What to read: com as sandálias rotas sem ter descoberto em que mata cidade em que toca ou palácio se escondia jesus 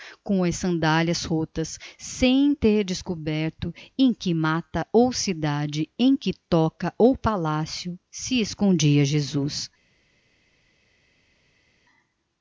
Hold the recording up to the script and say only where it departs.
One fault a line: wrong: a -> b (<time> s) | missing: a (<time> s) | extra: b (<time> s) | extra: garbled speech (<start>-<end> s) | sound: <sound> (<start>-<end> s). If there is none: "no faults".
extra: ou (4.9 s)